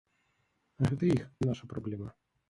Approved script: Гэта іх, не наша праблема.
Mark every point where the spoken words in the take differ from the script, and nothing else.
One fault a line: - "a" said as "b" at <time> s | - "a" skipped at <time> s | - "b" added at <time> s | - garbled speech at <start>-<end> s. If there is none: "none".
none